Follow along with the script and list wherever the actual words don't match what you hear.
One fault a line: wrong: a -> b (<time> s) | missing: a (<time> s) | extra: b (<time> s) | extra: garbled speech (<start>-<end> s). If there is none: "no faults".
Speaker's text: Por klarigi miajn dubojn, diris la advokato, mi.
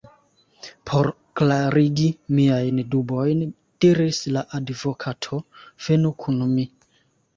extra: venu kun (5.9 s)